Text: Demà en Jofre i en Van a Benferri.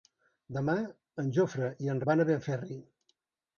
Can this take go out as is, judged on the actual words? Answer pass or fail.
pass